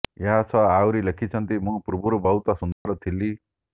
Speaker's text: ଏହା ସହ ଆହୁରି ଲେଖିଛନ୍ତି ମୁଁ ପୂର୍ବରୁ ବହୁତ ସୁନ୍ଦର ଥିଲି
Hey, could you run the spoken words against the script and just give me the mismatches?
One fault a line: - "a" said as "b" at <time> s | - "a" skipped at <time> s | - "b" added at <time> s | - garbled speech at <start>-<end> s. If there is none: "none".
none